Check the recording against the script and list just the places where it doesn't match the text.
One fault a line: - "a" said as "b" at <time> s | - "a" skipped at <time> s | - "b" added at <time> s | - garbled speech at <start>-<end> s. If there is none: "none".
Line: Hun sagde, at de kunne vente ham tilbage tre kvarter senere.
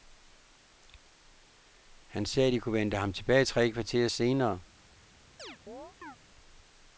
- "Hun" said as "Han" at 2.0 s